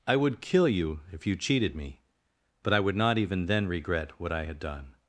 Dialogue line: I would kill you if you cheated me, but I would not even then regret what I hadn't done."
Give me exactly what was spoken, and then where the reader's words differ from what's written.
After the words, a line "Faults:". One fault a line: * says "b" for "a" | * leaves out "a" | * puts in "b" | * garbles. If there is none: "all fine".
I would kill you if you cheated me, but I would not even then regret what I had done."
Faults:
* says "had" for "hadn't"